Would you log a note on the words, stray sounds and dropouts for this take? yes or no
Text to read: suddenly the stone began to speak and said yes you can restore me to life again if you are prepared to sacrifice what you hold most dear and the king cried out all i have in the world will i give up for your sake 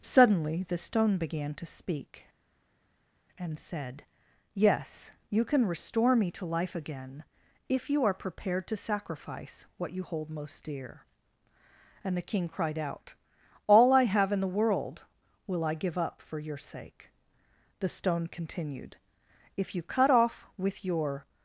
yes